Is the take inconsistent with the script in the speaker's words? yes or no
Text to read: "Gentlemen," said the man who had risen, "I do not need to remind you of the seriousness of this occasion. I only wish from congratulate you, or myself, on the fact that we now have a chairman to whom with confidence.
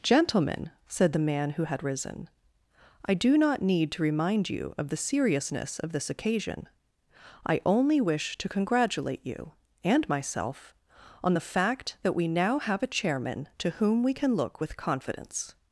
yes